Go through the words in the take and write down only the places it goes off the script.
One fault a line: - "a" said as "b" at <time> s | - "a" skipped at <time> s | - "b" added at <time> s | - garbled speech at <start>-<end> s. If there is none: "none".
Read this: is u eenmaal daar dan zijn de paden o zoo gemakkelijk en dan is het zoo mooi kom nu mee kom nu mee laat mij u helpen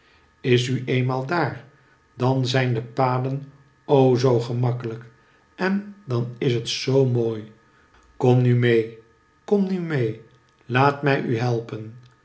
none